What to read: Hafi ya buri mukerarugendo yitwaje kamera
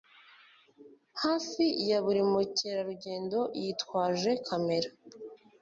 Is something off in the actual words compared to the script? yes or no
no